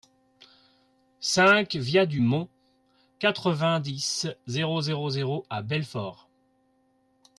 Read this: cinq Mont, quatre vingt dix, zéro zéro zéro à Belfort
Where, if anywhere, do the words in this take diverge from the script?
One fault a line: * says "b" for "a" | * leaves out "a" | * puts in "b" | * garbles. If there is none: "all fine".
* puts in "via du"